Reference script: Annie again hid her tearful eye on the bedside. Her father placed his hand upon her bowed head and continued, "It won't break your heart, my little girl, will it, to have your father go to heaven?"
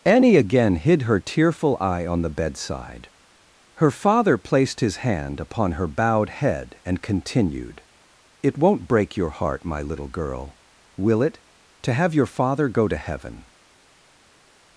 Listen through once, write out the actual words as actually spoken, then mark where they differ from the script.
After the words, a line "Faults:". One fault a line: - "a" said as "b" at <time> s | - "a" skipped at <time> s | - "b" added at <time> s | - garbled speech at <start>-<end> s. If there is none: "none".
Annie again hid her tearful eye on the bedside. Her father placed his hand upon her bowed head and continued, "It won't break your heart, my little girl, will it, to have your father go to heaven?"
Faults:
none